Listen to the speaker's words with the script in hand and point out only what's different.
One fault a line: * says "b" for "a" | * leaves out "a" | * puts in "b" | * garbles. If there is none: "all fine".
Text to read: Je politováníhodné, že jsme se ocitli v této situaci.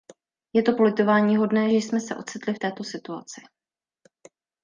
* puts in "to"